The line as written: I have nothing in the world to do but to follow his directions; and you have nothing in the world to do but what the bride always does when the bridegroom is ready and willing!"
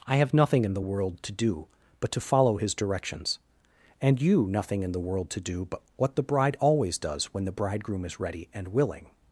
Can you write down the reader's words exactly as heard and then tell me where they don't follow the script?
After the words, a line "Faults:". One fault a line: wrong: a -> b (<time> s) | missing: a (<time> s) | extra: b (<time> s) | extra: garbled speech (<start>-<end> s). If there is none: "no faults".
I have nothing in the world to do but to follow his directions; and you nothing in the world to do but what the bride always does when the bridegroom is ready and willing!"
Faults:
missing: have (4.5 s)